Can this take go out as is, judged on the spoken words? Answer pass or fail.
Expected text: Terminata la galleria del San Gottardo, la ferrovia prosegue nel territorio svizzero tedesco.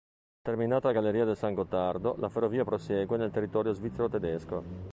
pass